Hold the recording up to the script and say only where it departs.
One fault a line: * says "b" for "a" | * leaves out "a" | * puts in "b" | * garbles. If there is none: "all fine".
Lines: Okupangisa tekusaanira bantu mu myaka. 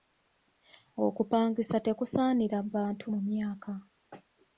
all fine